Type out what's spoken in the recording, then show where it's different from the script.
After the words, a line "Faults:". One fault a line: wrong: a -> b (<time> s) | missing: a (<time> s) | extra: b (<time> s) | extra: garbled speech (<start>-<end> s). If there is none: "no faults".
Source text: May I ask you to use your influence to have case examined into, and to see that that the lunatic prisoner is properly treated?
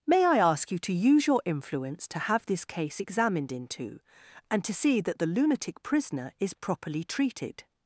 May I ask you to use your influence to have this case examined into, and to see that the lunatic prisoner is properly treated?
Faults:
extra: this (2.5 s)
missing: that (5.2 s)